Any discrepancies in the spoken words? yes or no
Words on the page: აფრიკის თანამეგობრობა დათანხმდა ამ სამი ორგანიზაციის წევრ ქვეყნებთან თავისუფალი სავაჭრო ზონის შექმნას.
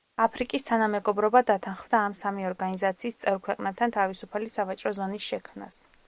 no